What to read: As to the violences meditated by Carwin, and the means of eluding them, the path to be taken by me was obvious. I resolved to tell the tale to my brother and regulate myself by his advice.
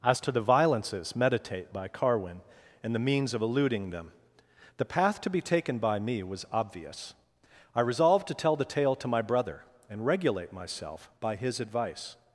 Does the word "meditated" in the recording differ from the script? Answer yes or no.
yes